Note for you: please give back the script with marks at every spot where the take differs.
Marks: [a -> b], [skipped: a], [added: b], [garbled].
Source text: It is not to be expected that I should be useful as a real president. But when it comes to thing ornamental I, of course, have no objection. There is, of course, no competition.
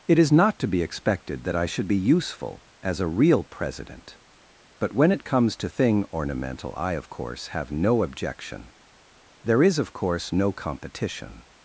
It is not to be expected that I should be useful as a real president. But when it comes to thing ornamental I, of course, have no objection. There is, of course, no competition.